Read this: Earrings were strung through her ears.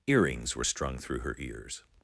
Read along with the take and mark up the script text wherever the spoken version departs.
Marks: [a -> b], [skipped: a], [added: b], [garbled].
Earrings were strung through her ears.